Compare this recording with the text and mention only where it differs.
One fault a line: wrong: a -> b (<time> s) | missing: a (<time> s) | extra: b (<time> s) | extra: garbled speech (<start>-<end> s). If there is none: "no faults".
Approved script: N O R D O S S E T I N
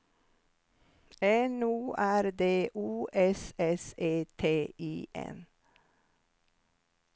no faults